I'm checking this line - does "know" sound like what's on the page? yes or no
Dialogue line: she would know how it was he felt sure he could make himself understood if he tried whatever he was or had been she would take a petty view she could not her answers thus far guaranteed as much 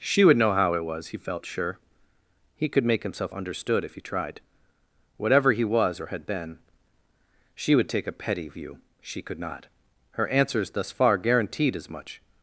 yes